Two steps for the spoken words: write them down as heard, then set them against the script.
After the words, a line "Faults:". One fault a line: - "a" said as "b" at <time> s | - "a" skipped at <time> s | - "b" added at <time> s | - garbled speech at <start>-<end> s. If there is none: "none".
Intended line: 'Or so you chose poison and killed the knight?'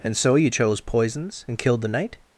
'And so you chose poisons and killed the knight?'
Faults:
- "Or" said as "And" at 0.0 s
- "poison" said as "poisons" at 0.8 s